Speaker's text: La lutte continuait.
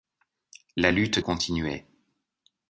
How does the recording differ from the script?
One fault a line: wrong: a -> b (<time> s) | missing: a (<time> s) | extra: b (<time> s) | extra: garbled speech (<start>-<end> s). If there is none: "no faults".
no faults